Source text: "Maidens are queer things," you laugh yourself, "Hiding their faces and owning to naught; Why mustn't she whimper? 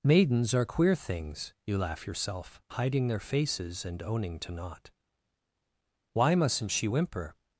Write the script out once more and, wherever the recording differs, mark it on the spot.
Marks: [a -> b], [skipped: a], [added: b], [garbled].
"Maidens are queer things," you laugh yourself, "Hiding their faces and owning to naught; Why mustn't she whimper?